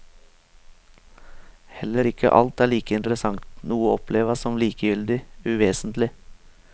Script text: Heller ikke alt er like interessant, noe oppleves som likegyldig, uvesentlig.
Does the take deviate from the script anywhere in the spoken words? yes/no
no